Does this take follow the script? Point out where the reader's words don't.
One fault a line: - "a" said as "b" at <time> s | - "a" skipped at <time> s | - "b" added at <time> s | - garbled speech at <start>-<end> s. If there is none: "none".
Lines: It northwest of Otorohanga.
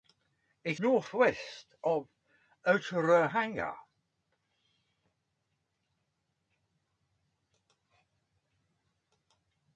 none